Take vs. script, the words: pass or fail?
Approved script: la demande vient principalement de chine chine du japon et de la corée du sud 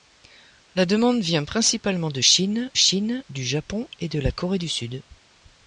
pass